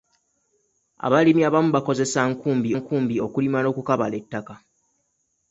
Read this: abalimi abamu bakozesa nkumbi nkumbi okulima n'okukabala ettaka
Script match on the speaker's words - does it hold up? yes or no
yes